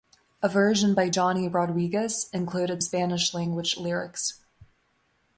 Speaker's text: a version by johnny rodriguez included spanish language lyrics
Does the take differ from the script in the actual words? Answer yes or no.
no